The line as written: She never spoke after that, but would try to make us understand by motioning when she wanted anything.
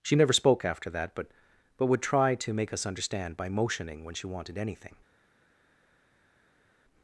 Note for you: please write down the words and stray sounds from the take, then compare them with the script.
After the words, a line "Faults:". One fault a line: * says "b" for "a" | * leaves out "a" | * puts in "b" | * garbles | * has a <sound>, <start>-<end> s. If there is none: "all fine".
She never spoke after that, but but would try to make us understand by motioning when she wanted anything.
Faults:
* puts in "but"